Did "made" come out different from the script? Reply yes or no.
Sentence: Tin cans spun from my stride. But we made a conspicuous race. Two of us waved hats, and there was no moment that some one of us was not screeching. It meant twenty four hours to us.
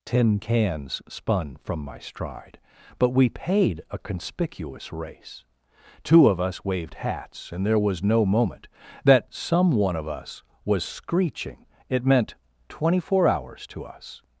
yes